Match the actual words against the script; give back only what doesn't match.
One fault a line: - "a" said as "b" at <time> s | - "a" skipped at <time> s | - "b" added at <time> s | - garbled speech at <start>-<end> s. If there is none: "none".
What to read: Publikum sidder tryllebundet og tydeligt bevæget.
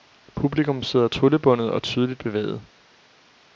none